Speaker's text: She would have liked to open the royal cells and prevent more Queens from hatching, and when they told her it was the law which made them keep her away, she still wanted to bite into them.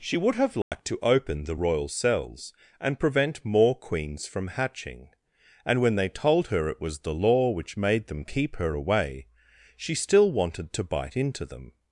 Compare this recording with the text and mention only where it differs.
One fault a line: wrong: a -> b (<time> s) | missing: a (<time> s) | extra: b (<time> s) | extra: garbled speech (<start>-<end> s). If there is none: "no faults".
no faults